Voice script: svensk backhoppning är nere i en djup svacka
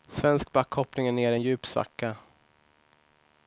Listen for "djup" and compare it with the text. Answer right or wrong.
right